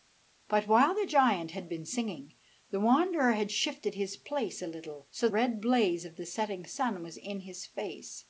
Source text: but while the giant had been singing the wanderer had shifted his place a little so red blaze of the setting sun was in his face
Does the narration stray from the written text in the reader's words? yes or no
no